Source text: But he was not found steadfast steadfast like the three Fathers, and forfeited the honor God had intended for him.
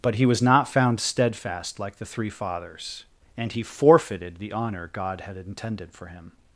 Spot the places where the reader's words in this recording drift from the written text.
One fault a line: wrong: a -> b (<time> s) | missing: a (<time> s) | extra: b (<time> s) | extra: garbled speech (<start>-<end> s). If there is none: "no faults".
missing: steadfast (1.8 s)
extra: he (3.5 s)